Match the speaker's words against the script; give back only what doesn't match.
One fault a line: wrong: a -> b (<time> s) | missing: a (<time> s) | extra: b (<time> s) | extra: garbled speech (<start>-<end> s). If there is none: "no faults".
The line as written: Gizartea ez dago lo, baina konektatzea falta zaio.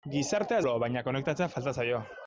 missing: dago (0.7 s)